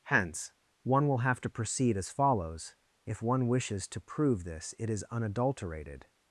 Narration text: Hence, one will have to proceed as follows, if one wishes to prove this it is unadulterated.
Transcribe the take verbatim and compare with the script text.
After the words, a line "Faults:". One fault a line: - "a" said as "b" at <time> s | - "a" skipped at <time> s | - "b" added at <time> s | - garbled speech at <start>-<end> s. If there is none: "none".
Hence, one will have to proceed as follows, if one wishes to prove this it is unadulterated.
Faults:
none